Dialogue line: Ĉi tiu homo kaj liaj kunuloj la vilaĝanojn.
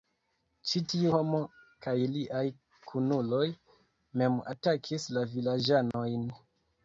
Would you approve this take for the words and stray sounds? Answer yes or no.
no